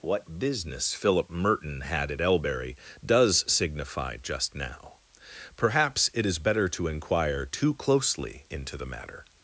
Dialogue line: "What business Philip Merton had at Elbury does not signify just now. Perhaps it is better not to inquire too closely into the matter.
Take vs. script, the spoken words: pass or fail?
fail